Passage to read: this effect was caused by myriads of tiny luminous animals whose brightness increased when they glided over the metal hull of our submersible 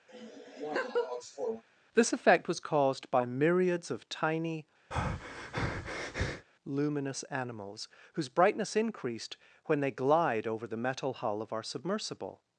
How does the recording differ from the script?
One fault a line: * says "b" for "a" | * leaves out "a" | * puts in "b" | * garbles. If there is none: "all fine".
* says "glide" for "glided"